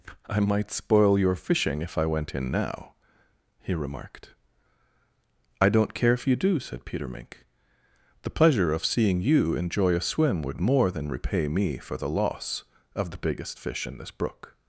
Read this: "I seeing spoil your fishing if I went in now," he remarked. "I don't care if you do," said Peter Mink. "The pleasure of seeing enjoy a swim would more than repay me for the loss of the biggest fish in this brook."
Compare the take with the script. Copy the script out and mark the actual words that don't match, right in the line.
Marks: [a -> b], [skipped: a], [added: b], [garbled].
"I [seeing -> might] spoil your fishing if I went in now," he remarked. "I don't care if you do," said Peter Mink. "The pleasure of seeing [added: you] enjoy a swim would more than repay me for the loss of the biggest fish in this brook."